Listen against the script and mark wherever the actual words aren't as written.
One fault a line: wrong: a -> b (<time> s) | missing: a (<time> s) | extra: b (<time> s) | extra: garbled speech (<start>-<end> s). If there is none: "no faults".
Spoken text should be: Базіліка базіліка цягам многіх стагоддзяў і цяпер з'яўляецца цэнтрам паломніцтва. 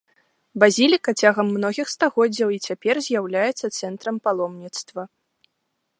missing: базіліка (1.1 s)